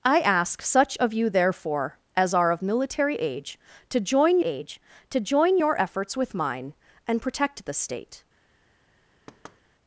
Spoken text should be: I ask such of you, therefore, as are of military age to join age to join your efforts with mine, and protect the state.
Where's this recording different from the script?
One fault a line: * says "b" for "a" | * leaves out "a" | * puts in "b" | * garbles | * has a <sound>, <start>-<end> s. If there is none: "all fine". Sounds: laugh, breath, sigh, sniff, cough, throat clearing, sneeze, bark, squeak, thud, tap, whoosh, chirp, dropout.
* has a thud, 9.3-9.6 s